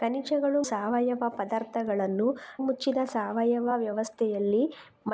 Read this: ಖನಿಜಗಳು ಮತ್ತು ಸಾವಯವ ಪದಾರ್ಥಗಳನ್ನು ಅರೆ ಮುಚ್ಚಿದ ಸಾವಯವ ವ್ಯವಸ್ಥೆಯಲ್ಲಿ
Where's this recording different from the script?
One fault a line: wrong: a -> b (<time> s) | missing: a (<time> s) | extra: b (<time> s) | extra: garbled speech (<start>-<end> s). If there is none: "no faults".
missing: ಮತ್ತು (0.6 s)
missing: ಅರೆ (2.3 s)